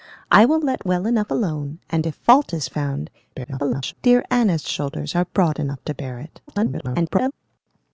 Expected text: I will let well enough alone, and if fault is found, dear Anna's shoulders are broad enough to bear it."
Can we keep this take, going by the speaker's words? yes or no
no